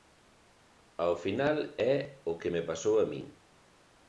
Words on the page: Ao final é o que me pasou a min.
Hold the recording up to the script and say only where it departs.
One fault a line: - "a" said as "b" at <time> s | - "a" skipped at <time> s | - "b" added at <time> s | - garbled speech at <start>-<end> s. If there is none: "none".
none